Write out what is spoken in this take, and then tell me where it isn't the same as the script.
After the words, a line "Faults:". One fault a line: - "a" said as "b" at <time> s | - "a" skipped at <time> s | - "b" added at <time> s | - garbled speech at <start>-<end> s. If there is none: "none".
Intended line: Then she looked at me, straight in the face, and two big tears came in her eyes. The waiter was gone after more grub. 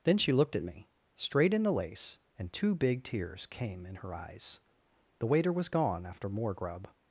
Then she looked at me, straight in the lace, and two big tears came in her eyes. The waiter was gone after more grub.
Faults:
- "face" said as "lace" at 1.7 s